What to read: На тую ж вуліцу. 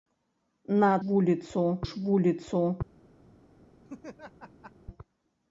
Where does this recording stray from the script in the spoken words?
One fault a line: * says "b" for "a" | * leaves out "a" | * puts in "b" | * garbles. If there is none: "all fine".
* says "вуліцу" for "тую"